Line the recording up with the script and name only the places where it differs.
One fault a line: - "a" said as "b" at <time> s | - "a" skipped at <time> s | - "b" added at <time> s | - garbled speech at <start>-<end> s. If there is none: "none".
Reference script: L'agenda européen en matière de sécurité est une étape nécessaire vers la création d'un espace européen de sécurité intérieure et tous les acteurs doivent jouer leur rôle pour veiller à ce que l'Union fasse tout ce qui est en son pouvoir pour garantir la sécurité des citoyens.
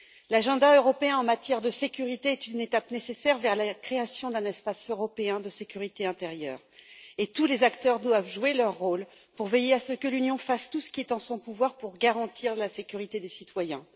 none